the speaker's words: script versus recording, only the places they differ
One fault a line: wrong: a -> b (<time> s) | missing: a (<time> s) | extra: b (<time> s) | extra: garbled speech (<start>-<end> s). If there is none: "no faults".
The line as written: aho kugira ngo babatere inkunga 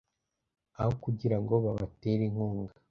no faults